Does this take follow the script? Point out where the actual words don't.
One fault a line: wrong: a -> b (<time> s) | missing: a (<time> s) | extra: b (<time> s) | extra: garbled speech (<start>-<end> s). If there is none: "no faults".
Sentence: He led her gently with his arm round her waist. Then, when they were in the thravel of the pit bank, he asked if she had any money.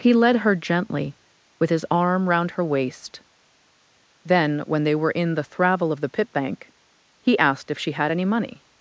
no faults